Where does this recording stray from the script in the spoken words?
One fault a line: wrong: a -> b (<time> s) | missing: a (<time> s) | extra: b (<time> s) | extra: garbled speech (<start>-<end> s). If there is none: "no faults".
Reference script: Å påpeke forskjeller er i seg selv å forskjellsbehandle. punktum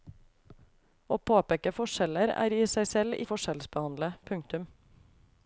no faults